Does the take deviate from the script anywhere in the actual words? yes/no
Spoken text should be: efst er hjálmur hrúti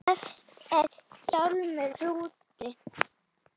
no